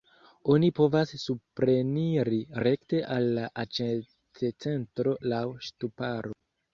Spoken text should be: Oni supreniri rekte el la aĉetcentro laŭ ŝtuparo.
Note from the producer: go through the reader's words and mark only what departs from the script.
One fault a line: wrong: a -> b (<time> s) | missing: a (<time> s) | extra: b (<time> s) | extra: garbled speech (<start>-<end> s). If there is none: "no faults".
extra: povas (0.8 s)
wrong: el -> al (3.1 s)